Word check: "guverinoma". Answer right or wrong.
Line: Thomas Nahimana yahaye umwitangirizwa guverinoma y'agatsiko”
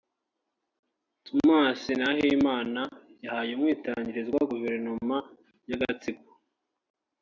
right